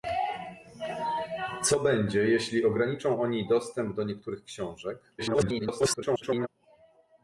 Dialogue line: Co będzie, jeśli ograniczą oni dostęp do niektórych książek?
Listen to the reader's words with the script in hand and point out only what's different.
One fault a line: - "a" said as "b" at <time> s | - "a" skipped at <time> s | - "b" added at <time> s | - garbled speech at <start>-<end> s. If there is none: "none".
- garbled speech at 5.2-6.5 s